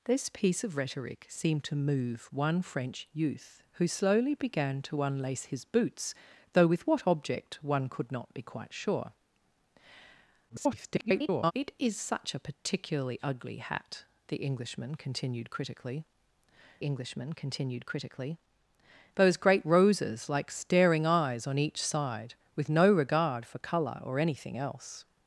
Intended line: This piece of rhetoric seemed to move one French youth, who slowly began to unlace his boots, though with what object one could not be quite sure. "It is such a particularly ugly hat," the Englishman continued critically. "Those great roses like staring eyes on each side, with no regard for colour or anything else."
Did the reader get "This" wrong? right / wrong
right